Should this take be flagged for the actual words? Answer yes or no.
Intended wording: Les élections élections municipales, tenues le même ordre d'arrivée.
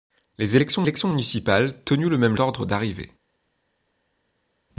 no